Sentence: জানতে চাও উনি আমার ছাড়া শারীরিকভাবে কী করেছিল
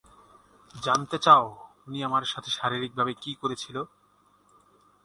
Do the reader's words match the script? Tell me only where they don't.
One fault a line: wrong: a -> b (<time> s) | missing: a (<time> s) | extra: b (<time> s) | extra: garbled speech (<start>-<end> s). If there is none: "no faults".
wrong: ছাড়া -> সাথে (2.2 s)